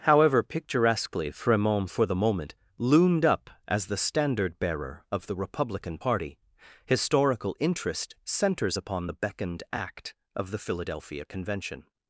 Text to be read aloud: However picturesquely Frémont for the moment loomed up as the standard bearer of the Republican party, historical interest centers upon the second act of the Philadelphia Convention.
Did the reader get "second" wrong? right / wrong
wrong